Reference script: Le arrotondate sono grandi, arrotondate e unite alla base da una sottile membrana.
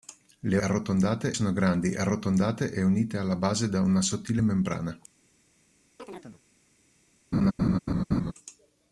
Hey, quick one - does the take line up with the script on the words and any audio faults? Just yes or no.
no